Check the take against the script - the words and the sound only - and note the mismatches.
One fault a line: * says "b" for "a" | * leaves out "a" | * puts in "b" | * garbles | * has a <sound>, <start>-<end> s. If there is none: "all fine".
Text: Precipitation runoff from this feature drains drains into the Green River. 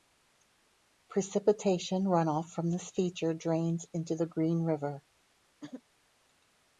* leaves out "drains"
* has a throat clearing, 5.6-5.8 s